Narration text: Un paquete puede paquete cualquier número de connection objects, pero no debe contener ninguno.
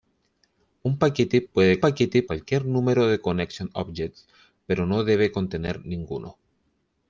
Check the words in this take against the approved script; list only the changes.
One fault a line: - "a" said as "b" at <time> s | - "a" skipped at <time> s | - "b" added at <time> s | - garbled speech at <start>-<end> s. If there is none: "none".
none